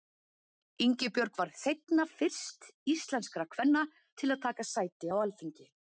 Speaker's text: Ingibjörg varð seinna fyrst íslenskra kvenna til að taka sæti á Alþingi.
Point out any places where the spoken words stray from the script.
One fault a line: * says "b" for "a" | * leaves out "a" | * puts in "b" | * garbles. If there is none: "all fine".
all fine